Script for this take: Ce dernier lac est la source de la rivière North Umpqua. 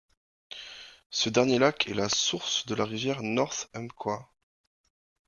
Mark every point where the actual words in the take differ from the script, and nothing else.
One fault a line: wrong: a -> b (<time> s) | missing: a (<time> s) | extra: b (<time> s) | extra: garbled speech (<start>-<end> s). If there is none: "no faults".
no faults